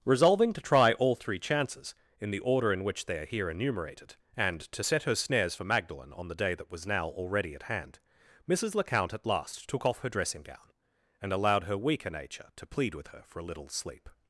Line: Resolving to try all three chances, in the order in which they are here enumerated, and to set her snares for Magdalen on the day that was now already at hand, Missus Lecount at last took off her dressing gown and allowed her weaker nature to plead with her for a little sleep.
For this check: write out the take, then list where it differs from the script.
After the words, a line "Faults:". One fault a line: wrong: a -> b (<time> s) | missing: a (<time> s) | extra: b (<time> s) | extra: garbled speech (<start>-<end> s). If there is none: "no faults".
Resolving to try all three chances, in the order in which they are here enumerated, and to set her snares for Magdalen on the day that was now already at hand, Missus Lecount at last took off her dressing gown and allowed her weaker nature to plead with her for a little sleep.
Faults:
no faults